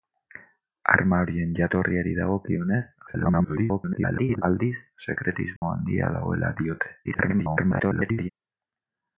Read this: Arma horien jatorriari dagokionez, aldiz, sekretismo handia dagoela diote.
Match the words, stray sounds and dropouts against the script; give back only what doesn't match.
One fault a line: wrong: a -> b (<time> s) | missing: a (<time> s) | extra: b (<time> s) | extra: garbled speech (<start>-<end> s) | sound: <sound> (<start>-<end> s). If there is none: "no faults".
extra: garbled speech (3.1-4.4 s)
sound: dropout (5.6-5.6 s)
extra: garbled speech (7.0-8.3 s)